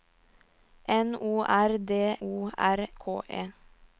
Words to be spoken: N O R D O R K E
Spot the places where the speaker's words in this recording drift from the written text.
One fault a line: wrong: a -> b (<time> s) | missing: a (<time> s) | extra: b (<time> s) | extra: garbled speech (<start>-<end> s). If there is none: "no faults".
no faults